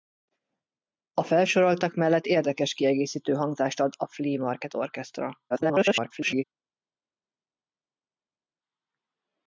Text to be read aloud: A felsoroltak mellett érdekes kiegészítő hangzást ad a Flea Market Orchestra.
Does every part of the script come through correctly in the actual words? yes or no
no